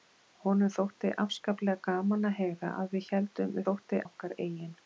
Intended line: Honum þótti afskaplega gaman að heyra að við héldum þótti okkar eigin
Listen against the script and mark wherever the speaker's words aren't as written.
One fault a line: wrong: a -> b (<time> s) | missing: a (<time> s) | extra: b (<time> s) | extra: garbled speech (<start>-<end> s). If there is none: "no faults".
no faults